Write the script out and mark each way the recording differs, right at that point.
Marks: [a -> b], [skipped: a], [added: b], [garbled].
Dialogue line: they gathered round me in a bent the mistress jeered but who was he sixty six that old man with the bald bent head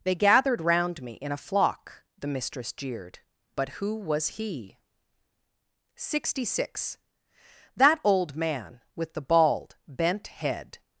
they gathered round me in a [bent -> flock] the mistress jeered but who was he sixty six that old man with the bald bent head